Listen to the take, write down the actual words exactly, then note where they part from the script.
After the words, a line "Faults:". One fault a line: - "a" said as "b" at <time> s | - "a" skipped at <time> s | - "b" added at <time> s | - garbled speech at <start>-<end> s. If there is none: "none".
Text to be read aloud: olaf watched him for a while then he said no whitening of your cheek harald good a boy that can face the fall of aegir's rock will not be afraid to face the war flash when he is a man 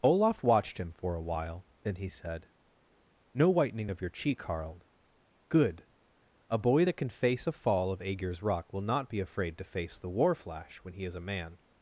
olaf watched him for a while then he said no whitening of your cheek harald good a boy that can face a fall of aegir's rock will not be afraid to face the war flash when he is a man
Faults:
- "the" said as "a" at 7.5 s